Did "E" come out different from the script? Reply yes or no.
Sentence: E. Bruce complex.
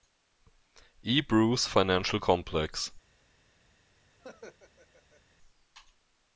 no